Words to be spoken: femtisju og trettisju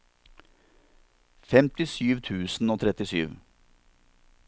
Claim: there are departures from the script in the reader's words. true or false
true